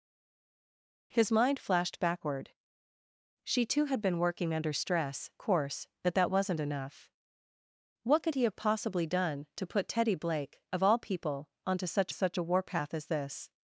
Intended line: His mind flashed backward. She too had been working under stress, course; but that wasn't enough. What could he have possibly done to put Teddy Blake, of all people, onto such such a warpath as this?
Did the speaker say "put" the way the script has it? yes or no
yes